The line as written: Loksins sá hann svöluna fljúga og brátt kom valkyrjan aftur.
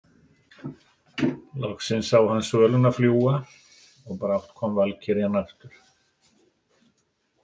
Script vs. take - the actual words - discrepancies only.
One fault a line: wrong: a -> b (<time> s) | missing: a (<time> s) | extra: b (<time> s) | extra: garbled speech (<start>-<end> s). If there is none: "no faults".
no faults